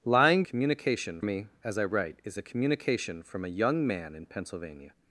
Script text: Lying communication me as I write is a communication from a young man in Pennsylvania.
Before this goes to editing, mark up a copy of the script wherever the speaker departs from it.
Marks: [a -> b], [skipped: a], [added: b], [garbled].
Lying communication me as I write is a communication from a young man in Pennsylvania.